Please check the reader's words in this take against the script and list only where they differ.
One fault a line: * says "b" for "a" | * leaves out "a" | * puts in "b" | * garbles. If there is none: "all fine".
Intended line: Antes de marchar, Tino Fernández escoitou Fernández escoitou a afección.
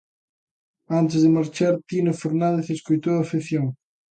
* leaves out "Fernández escoitou"